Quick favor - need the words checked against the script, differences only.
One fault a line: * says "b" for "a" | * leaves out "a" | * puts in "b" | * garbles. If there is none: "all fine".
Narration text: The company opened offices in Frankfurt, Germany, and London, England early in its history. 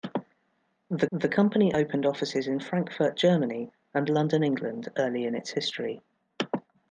* puts in "the"